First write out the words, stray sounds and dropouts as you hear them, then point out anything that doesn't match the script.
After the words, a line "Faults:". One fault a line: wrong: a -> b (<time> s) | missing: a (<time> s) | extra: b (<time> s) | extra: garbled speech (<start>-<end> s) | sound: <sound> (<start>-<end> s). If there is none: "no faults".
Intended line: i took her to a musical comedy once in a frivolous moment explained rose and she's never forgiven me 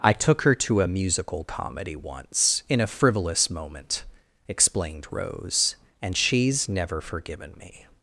i took her to a musical comedy once in a frivolous moment explained rose and she's never forgiven me
Faults:
no faults